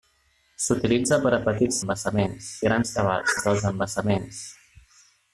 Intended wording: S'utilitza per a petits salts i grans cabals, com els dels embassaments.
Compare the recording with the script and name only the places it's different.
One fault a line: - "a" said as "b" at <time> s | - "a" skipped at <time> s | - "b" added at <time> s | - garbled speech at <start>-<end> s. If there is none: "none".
- "salts" said as "embassaments" at 1.8 s
- "com" skipped at 3.4 s